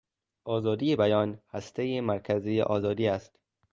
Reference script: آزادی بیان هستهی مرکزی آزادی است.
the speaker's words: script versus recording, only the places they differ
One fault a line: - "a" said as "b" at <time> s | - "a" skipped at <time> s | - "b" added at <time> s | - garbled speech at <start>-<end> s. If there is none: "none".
none